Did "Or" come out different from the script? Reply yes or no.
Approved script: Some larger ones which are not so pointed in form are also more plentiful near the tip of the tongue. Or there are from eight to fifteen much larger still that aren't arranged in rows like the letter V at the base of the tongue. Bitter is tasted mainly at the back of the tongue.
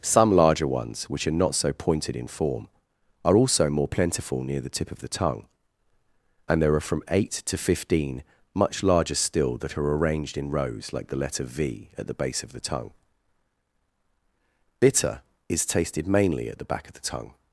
yes